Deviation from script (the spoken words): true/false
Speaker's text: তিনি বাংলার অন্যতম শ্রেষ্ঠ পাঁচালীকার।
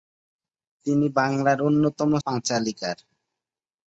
true